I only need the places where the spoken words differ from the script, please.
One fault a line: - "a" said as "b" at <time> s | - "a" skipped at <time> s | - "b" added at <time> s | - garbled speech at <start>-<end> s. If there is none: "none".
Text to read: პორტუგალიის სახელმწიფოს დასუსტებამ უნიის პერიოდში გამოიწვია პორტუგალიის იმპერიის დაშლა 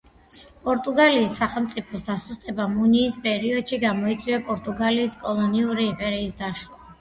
- "კოლონიური" added at 5.3 s